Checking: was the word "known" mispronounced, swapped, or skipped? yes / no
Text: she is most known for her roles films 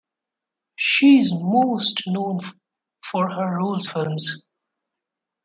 no